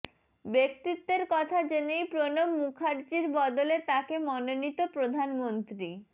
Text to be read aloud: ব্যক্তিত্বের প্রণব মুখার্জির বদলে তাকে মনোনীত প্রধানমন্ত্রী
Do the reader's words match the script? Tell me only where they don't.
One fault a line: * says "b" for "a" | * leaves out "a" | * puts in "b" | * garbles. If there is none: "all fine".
* puts in "কথা জেনেই"